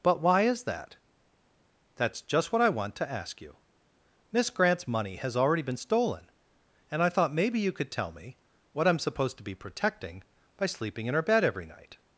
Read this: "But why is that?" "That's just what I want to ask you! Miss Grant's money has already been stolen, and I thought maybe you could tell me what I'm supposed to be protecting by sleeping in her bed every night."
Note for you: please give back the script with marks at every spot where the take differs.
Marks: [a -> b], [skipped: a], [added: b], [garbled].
"But why is that?" "That's just what I want to ask you! Miss Grant's money has already been stolen, and I thought maybe you could tell me what I'm supposed to be protecting by sleeping in her bed every night."